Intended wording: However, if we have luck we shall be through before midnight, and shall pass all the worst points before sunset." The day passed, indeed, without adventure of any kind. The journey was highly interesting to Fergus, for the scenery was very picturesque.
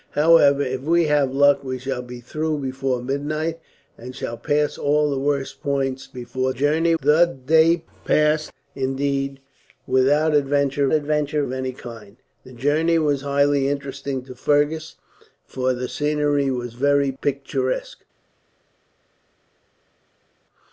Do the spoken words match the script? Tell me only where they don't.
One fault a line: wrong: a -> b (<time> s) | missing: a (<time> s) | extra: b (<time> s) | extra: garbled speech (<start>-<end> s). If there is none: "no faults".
wrong: sunset -> journey (6.5 s)
extra: adventure (10.9 s)